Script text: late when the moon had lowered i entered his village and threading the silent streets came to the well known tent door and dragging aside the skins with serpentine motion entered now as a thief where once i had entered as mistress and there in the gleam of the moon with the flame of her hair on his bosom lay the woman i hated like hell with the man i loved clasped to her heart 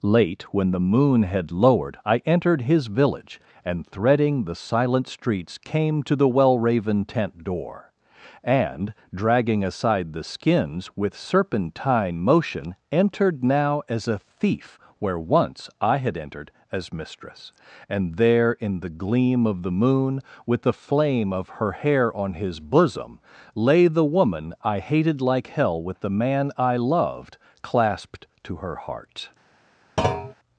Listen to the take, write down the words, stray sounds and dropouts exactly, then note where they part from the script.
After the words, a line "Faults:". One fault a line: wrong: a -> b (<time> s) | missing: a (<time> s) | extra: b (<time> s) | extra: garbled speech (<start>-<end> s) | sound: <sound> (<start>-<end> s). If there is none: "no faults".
late when the moon had lowered i entered his village and threading the silent streets came to the well raven tent door and dragging aside the skins with serpentine motion entered now as a thief where once i had entered as mistress and there in the gleam of the moon with the flame of her hair on his bosom lay the woman i hated like hell with the man i loved clasped to her heart
Faults:
wrong: known -> raven (6.6 s)
sound: thud (30.0-30.3 s)